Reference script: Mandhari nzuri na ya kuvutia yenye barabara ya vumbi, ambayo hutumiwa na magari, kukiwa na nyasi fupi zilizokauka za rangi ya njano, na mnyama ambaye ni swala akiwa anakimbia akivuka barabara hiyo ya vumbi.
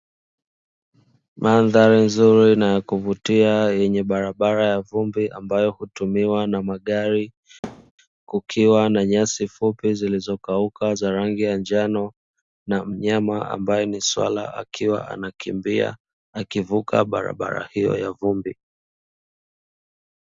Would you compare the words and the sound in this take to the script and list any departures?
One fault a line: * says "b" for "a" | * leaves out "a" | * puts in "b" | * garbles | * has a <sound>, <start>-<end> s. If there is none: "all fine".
* has a thud, 7.6-7.9 s